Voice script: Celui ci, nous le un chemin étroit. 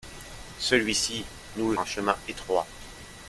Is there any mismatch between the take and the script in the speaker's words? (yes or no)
no